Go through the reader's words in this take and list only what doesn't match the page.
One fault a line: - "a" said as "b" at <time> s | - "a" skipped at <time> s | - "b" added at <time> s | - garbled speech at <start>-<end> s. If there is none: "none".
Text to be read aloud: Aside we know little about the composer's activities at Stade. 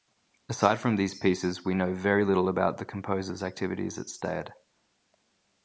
- "from these pieces" added at 0.8 s
- "very" added at 1.9 s